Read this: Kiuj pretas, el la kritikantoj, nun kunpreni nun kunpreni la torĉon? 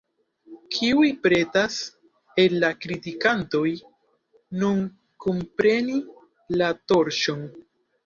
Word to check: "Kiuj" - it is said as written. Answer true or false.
true